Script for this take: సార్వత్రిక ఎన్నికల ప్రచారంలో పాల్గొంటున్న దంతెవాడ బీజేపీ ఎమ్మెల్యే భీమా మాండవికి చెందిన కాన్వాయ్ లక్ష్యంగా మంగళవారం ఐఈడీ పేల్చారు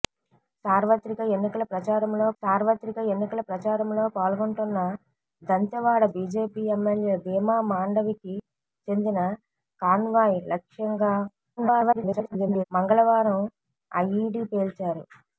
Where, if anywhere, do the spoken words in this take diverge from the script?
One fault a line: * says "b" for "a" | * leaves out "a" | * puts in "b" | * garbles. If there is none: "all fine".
* puts in "సార్వత్రిక ఎన్నికల ప్రచారంలో"
* garbles